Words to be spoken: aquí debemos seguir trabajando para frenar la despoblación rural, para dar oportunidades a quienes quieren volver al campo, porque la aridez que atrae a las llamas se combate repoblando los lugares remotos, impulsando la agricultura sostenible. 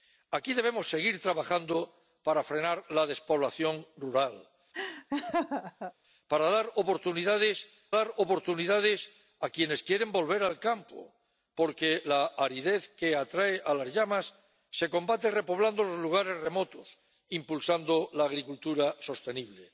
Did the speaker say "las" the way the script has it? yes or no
yes